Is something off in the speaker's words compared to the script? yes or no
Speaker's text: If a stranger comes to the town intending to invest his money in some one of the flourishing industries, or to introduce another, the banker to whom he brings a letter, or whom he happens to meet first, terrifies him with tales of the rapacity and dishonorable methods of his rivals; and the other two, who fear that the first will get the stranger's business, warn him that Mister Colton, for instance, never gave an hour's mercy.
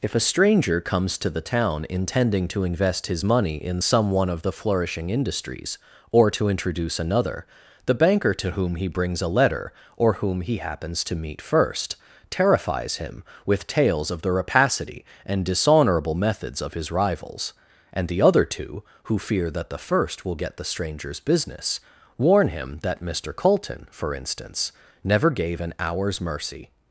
no